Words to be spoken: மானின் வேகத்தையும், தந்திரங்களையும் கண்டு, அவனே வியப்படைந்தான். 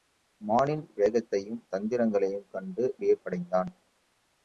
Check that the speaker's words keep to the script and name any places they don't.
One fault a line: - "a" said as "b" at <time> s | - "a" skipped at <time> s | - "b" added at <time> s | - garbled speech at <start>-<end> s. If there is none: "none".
- "அவனே" skipped at 3.0 s